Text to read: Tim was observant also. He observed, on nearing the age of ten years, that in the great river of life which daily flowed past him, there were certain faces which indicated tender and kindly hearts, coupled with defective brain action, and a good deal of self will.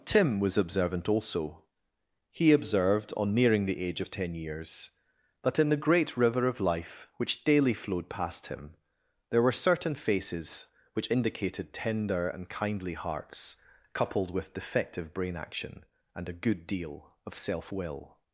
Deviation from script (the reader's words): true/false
false